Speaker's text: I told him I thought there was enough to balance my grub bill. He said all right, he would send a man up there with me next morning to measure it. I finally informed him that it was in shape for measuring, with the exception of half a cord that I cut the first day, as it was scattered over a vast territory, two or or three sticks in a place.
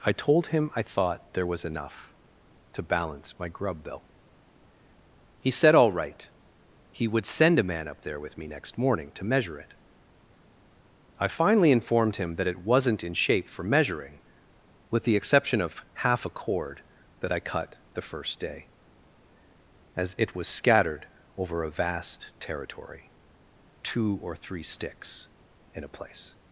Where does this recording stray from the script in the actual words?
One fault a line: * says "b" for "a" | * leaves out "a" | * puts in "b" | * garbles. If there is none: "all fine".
* says "wasn't" for "was"
* leaves out "or"